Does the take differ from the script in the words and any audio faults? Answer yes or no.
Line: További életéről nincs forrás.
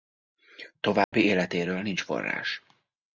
yes